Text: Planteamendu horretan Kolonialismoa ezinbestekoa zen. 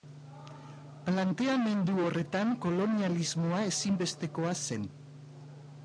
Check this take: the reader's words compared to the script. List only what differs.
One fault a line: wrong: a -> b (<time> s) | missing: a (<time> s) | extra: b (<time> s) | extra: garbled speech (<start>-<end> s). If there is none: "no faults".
no faults